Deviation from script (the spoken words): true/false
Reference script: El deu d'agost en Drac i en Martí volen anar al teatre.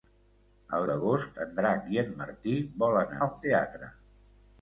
true